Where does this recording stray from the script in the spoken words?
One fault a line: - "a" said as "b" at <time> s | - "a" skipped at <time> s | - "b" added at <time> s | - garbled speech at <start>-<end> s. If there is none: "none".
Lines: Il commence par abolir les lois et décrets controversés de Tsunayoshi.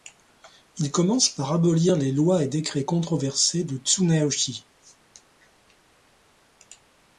none